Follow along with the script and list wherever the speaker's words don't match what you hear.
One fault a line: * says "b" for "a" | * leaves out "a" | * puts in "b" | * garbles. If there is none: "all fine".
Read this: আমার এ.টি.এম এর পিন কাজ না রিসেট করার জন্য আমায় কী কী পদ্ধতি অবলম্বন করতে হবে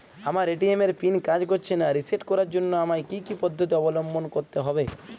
* puts in "করছে"